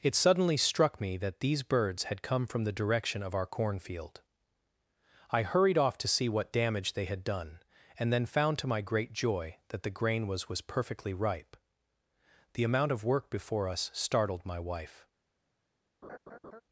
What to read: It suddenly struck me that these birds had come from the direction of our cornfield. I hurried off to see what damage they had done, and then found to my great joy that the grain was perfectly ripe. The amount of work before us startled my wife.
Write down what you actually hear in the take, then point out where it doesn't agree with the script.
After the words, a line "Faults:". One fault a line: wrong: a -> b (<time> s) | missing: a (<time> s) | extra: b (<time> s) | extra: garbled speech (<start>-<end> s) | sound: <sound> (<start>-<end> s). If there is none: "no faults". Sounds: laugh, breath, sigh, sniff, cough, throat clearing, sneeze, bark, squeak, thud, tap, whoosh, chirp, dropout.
It suddenly struck me that these birds had come from the direction of our cornfield. I hurried off to see what damage they had done, and then found to my great joy that the grain was was perfectly ripe. The amount of work before us startled my wife.
Faults:
extra: was (10.5 s)
sound: laugh (16.0-16.6 s)